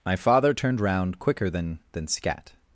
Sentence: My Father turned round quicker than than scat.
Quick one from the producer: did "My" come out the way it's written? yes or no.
yes